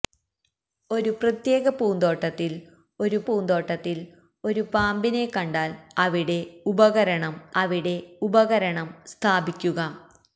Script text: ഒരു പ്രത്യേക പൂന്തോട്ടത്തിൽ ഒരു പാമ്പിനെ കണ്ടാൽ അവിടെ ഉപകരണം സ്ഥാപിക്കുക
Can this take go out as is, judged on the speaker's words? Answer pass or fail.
fail